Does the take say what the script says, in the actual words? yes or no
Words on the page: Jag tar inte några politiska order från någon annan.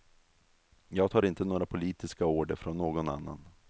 yes